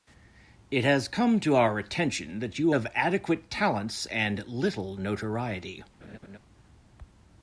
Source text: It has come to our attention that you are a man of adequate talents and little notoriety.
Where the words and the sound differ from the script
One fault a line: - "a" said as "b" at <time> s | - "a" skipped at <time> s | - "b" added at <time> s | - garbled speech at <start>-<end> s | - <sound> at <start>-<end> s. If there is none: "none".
- "are a man" skipped at 2.7 s
- laugh at 6.0-6.4 s